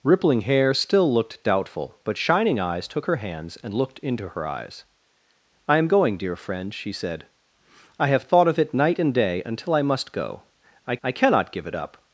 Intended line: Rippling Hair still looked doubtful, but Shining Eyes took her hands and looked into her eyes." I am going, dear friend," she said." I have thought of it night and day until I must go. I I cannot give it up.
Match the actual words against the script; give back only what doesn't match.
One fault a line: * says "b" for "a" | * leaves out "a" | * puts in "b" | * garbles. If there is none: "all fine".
all fine